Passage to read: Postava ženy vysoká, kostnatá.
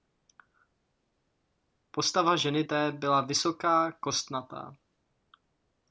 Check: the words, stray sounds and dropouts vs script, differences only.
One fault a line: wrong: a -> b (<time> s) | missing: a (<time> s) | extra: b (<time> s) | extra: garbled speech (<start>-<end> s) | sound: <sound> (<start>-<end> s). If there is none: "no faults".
extra: té byla (2.6 s)